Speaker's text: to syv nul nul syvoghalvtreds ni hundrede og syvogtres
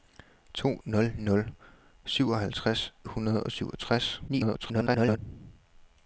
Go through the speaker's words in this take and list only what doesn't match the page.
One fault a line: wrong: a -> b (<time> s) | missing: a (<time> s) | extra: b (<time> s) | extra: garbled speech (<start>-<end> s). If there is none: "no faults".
missing: syv (0.8 s)
missing: ni (2.9 s)
extra: garbled speech (4.3-5.2 s)